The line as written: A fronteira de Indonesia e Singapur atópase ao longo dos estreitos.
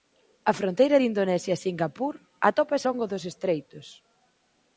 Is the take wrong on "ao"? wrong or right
wrong